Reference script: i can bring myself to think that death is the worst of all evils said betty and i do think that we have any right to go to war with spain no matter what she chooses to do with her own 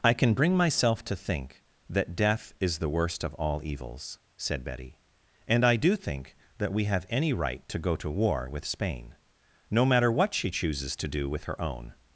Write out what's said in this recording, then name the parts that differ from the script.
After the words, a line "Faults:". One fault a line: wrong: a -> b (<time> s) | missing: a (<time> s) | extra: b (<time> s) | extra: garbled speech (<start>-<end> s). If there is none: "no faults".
i can bring myself to think that death is the worst of all evils said betty and i do think that we have any right to go to war with spain no matter what she chooses to do with her own
Faults:
no faults